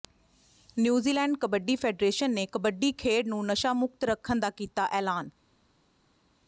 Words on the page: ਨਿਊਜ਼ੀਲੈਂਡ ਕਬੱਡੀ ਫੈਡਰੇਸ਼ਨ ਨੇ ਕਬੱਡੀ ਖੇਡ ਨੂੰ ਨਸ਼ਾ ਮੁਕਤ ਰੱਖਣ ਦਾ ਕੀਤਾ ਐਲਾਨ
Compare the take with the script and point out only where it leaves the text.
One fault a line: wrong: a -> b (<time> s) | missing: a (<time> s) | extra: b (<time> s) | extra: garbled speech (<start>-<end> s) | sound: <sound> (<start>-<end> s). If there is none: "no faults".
no faults